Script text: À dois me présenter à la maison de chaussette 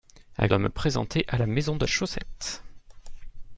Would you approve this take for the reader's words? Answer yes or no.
yes